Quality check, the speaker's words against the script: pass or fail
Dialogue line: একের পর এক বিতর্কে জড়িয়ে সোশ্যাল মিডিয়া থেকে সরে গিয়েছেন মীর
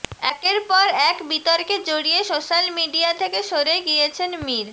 pass